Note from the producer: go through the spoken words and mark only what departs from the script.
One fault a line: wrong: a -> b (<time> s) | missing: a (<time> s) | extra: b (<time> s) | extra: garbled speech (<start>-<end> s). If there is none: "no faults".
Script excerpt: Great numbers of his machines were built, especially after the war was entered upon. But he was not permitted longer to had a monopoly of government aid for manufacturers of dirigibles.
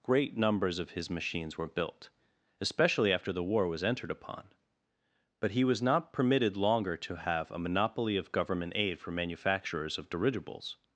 wrong: had -> have (7.2 s)